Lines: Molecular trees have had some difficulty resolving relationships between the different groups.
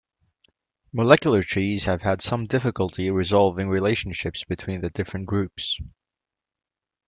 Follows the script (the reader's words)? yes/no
yes